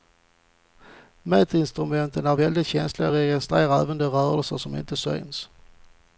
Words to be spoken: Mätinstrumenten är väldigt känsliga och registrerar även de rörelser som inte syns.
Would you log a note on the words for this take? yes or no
no